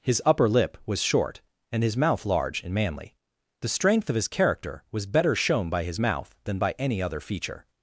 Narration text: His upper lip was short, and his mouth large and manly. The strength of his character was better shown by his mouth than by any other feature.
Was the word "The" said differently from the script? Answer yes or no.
no